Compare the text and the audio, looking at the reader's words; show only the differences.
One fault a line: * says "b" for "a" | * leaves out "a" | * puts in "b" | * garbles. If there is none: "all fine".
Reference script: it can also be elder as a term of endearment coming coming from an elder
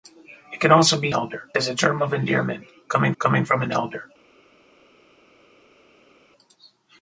all fine